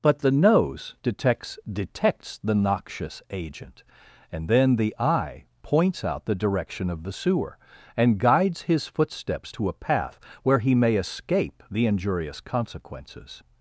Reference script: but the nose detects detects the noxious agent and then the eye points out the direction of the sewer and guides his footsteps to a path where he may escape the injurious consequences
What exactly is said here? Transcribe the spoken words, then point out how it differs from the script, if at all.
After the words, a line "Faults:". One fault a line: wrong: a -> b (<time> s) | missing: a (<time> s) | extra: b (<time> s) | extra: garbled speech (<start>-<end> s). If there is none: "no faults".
but the nose detects detects the noxious agent and then the eye points out the direction of the sewer and guides his footsteps to a path where he may escape the injurious consequences
Faults:
no faults